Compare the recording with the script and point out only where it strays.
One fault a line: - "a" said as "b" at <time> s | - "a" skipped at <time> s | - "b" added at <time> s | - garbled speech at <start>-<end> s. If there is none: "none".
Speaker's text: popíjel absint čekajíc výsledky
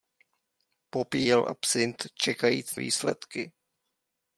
none